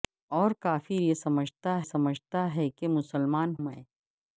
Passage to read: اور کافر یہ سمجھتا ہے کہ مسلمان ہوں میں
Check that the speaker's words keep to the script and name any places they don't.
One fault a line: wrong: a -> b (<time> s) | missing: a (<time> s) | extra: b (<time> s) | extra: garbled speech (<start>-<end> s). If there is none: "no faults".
extra: سمجھتا (1.8 s)
missing: ہوں (3.5 s)